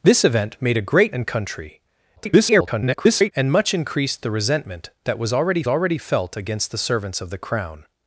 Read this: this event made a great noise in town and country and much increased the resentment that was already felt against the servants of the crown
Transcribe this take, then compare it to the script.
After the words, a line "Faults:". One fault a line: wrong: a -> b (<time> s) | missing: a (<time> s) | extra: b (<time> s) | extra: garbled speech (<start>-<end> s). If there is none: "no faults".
this event made a great and country [garbled] and much increased the resentment that was already already felt against the servants of the crown
Faults:
missing: noise in town (1.1 s)
extra: garbled speech (2.2-3.3 s)
extra: already (5.7 s)